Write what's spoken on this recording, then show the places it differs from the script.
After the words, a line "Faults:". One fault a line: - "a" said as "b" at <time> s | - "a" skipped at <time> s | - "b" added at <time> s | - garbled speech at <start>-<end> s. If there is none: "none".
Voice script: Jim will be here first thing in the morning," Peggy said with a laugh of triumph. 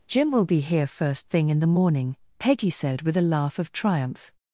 Jim will be here first thing in the morning," Peggy said with a laugh of triumph.
Faults:
none